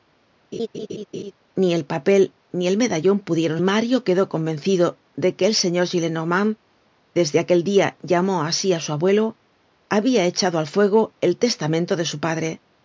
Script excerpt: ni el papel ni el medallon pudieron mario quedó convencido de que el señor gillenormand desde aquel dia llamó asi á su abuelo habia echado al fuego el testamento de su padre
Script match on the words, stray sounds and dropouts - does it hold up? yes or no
no